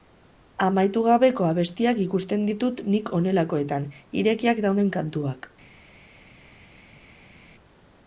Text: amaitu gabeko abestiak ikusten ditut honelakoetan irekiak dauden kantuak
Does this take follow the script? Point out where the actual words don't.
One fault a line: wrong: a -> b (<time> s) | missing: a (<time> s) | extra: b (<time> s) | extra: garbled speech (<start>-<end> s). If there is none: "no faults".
extra: nik (2.9 s)